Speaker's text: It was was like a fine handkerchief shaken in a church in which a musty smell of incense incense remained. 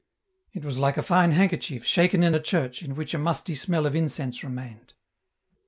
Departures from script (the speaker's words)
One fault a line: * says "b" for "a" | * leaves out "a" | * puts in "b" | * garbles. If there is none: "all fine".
* leaves out "was"
* leaves out "incense"